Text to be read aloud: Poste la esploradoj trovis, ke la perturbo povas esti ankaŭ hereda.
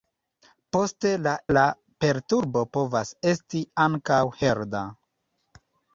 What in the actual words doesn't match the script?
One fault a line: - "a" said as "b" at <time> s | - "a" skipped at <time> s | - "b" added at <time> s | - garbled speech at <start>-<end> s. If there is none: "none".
- "esploradoj trovis ke" skipped at 1.3 s